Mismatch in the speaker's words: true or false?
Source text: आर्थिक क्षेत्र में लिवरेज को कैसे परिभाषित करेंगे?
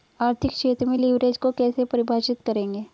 false